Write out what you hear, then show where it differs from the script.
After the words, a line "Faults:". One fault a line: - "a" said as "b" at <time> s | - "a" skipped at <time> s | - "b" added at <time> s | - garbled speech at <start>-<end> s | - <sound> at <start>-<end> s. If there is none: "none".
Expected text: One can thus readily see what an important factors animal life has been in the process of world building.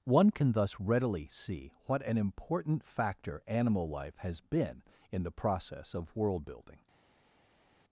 One can thus readily see what an important factor animal life has been in the process of world building.
Faults:
- "factors" said as "factor" at 2.8 s